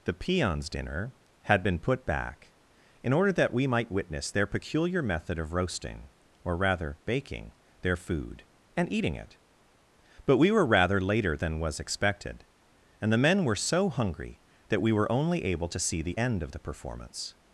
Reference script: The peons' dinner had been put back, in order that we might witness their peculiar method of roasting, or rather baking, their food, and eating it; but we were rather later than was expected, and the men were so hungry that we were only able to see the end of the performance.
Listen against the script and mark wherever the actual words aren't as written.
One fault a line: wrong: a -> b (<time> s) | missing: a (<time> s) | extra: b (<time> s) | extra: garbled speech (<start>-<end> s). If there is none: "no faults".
no faults